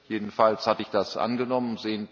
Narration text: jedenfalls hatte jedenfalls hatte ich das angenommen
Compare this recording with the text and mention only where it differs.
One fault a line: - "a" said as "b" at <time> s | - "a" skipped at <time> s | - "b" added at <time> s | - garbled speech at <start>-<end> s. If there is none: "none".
- "jedenfalls hatte" skipped at 0.8 s